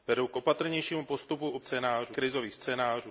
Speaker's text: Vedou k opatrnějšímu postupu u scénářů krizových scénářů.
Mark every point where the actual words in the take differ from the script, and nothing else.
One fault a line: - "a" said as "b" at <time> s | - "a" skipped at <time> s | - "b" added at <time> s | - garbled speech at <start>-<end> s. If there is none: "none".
none